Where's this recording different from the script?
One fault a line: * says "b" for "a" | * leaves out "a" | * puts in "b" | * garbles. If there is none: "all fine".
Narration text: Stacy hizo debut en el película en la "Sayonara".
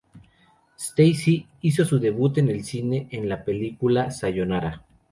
* puts in "su"
* says "cine" for "película"
* puts in "película"